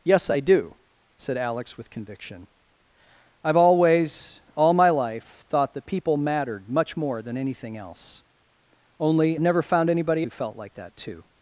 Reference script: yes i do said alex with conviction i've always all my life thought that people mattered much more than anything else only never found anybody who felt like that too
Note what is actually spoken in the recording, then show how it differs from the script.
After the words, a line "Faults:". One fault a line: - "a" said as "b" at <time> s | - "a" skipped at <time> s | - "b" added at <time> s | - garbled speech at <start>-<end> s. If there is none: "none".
yes i do said alex with conviction i've always all my life thought that people mattered much more than anything else only never found anybody who felt like that too
Faults:
none